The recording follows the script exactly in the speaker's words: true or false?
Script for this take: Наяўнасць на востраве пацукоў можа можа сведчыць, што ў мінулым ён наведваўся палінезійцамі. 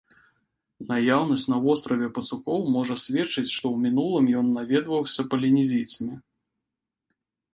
false